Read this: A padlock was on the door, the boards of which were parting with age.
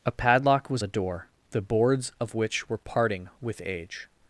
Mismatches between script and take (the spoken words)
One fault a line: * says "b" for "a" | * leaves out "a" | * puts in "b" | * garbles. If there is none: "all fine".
* leaves out "on"